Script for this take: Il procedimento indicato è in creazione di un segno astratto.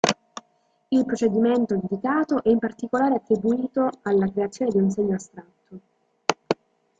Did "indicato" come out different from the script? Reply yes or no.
no